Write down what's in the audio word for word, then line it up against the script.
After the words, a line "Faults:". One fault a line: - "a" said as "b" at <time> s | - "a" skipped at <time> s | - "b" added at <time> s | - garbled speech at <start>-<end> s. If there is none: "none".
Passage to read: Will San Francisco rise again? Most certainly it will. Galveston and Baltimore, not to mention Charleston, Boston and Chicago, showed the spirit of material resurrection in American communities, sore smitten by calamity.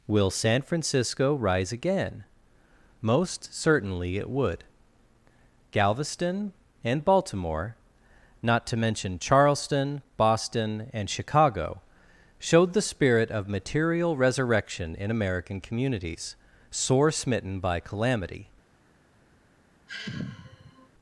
Will San Francisco rise again? Most certainly it would. Galveston and Baltimore, not to mention Charleston, Boston and Chicago, showed the spirit of material resurrection in American communities, sore smitten by calamity.
Faults:
- "will" said as "would" at 4.3 s